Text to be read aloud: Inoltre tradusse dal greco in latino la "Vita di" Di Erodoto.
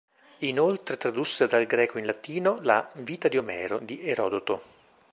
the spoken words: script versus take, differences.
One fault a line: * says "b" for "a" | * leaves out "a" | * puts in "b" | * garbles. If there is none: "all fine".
* puts in "Omero"